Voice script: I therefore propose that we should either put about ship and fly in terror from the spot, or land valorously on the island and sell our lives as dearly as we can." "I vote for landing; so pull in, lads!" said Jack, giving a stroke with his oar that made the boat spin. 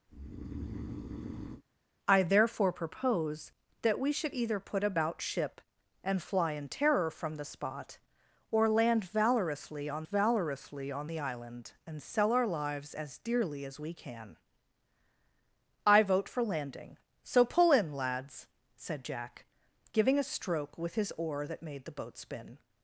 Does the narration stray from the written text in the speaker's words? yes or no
yes